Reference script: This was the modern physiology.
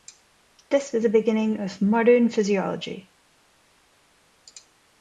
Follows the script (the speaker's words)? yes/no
no